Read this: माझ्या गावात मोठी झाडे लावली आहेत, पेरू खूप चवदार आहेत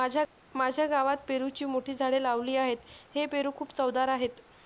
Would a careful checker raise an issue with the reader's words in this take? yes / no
yes